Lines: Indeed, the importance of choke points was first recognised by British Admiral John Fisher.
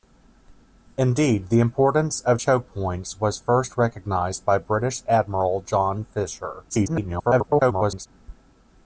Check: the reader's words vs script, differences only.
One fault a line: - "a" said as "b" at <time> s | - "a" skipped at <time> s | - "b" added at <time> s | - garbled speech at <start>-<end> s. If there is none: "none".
- garbled speech at 6.7-8.1 s